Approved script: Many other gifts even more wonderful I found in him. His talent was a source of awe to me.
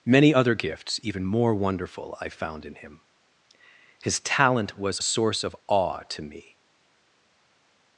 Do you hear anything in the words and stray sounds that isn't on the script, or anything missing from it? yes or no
yes